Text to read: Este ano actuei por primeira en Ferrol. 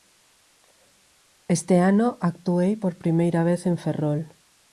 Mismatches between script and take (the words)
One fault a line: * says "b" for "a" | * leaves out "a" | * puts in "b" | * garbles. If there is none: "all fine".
* puts in "vez"